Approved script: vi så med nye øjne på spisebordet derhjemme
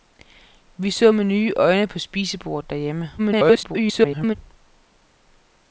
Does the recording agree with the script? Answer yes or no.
no